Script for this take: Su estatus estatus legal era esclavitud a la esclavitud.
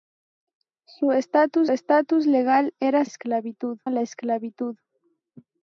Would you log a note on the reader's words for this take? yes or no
no